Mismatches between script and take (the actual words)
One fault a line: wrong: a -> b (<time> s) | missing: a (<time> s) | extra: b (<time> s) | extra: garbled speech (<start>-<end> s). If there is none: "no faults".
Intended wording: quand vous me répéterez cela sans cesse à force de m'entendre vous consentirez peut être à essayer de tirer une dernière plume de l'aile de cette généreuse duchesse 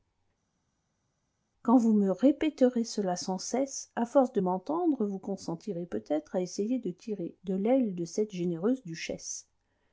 missing: une dernière plume (7.4 s)